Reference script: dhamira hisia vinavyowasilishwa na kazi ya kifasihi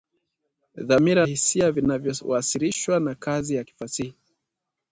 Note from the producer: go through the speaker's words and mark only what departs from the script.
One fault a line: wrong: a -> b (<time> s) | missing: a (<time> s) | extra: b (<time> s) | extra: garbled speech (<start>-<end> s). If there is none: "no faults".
no faults